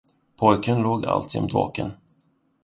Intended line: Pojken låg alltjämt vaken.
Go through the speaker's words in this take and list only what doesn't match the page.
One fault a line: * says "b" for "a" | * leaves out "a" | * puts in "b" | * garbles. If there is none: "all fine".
all fine